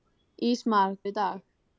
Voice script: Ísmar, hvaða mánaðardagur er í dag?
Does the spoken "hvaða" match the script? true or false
false